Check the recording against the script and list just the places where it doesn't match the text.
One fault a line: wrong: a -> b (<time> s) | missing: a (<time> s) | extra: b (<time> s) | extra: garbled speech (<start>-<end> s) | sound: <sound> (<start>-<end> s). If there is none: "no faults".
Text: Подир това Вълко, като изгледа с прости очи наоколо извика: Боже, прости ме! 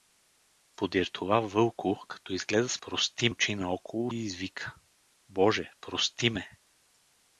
no faults